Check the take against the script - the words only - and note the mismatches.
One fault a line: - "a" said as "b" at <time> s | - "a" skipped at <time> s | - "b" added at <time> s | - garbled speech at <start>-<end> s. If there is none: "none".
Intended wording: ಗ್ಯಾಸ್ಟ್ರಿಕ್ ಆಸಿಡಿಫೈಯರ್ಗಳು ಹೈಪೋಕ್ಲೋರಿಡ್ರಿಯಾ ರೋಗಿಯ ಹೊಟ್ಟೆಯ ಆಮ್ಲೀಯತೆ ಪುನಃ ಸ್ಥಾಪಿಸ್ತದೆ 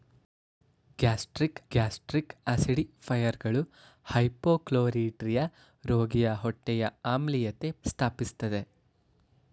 - "ಗ್ಯಾಸ್ಟ್ರಿಕ್" added at 1.7 s
- "ಪುನಃ" skipped at 7.7 s